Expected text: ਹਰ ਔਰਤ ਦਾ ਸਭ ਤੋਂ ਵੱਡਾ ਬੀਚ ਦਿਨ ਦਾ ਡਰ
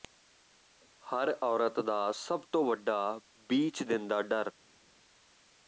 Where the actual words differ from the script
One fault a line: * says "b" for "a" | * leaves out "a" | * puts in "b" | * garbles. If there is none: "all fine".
all fine